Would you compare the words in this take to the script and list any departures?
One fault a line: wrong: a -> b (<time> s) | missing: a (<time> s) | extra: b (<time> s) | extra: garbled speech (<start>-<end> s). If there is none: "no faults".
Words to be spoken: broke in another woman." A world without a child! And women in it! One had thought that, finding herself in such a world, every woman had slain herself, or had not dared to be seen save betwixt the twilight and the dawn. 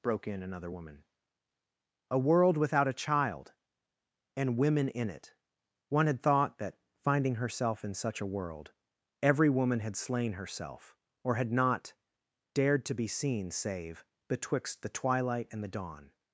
no faults